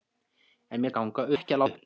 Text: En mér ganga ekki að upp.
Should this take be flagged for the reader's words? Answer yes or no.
no